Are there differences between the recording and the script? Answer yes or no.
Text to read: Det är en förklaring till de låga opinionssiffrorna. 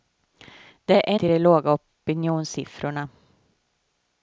yes